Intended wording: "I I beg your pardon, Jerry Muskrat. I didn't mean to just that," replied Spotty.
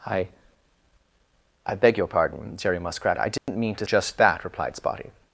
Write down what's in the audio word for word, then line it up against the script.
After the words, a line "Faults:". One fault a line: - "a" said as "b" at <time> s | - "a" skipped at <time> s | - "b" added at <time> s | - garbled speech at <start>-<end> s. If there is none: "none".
"I I beg your pardon, Jerry Muskrat. I didn't mean to just that," replied Spotty.
Faults:
none